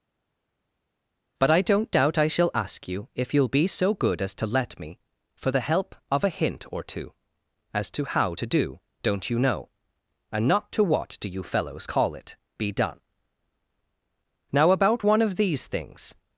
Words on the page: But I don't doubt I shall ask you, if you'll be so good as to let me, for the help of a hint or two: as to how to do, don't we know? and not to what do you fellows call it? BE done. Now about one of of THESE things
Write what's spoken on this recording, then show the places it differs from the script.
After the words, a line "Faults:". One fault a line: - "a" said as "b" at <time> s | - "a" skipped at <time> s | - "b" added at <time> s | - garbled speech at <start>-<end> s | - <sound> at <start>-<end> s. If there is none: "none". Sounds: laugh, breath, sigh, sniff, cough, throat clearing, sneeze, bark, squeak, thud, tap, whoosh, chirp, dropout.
But I don't doubt I shall ask you, if you'll be so good as to let me, for the help of a hint or two: as to how to do, don't you know? and not to what do you fellows call it? BE done. Now about one of THESE things
Faults:
- "we" said as "you" at 9.3 s
- "of" skipped at 15.4 s